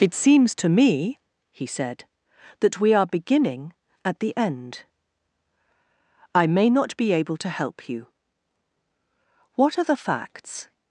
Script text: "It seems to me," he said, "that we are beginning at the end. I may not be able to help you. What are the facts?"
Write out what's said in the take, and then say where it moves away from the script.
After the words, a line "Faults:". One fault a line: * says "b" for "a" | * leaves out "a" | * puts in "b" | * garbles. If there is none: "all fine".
"It seems to me," he said, "that we are beginning at the end. I may not be able to help you. What are the facts?"
Faults:
all fine